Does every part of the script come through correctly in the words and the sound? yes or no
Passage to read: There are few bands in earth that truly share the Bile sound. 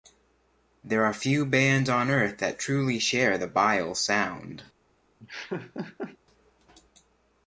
no